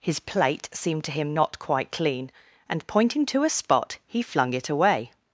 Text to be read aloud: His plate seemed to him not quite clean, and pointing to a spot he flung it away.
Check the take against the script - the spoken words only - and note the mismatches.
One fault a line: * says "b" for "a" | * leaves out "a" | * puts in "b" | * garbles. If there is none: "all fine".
all fine